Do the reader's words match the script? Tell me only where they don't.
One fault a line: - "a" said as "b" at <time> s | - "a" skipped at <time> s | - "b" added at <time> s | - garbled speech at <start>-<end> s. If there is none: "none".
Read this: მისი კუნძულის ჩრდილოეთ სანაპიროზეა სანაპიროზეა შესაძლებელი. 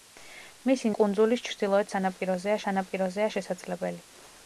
none